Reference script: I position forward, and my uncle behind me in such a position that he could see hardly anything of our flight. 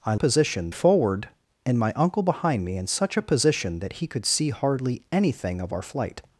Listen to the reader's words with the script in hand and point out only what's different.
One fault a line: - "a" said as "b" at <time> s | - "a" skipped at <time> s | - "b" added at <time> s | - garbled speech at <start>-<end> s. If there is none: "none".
none